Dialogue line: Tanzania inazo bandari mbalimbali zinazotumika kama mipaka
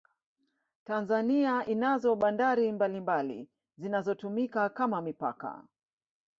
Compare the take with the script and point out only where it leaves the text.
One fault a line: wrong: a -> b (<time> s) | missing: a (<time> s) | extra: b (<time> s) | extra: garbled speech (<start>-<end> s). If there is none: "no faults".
no faults